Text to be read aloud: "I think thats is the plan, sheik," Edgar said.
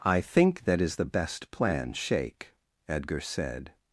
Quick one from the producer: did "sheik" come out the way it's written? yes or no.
yes